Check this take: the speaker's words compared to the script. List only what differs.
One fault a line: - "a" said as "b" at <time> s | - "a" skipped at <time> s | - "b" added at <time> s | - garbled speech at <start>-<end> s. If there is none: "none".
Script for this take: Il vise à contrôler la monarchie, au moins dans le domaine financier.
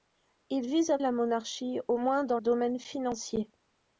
- "contrôler" skipped at 1.0 s
- "le" skipped at 2.4 s